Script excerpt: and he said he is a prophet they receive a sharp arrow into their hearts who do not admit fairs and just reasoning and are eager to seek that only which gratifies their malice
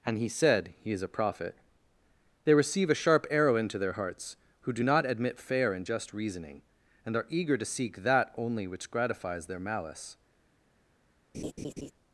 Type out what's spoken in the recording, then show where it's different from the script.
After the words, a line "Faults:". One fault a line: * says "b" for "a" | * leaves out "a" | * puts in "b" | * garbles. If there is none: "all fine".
and he said he is a prophet they receive a sharp arrow into their hearts who do not admit fair and just reasoning and are eager to seek that only which gratifies their malice
Faults:
* says "fair" for "fairs"